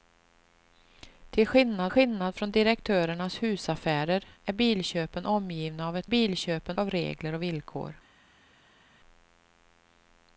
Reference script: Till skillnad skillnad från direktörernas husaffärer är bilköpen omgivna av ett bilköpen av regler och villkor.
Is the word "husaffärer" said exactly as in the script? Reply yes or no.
yes